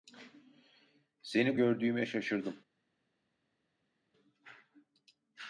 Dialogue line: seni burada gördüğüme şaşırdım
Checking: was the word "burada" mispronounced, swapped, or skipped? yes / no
yes